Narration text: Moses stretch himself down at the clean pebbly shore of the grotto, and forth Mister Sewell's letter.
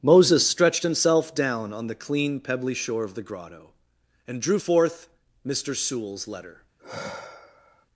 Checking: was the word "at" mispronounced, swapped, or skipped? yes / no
yes